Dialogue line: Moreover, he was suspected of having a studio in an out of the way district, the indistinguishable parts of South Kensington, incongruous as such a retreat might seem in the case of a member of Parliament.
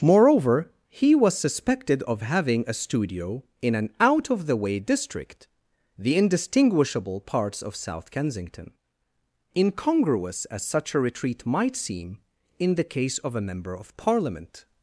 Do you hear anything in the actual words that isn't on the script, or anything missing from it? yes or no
no